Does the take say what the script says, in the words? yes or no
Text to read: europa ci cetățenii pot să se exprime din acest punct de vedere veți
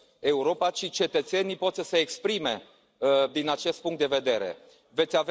yes